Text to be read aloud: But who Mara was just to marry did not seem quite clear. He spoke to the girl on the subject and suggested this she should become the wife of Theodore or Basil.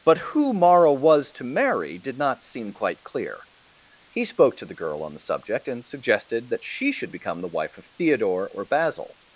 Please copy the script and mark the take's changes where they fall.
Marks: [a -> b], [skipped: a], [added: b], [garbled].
But who Mara was [skipped: just] to marry did not seem quite clear. He spoke to the girl on the subject and suggested [this -> that] she should become the wife of Theodore or Basil.